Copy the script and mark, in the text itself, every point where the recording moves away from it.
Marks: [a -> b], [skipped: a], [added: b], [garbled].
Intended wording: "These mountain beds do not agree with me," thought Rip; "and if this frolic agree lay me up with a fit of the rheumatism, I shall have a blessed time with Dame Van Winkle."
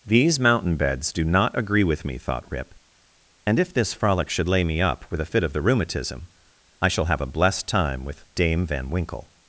"These mountain beds do not agree with me," thought Rip; "and if this frolic [agree -> should] lay me up with a fit of the rheumatism, I shall have a blessed time with Dame Van Winkle."